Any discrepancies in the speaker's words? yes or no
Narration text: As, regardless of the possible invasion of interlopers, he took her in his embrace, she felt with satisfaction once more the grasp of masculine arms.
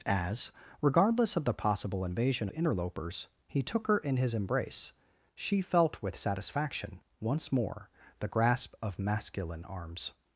yes